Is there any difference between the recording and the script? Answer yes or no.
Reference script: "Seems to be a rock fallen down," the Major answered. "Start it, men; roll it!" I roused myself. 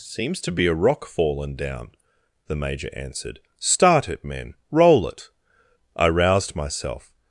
no